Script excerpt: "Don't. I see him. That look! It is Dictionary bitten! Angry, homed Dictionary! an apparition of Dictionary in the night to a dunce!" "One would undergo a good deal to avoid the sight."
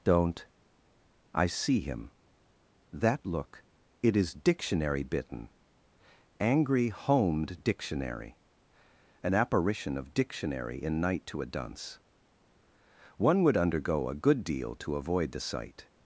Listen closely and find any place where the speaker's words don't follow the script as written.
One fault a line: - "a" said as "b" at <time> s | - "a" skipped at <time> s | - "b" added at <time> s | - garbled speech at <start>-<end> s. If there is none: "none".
- "the" skipped at 11.0 s